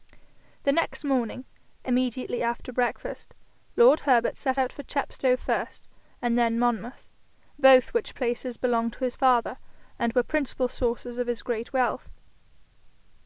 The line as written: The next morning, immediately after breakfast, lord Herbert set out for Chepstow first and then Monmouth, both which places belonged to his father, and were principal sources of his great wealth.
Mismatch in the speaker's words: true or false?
false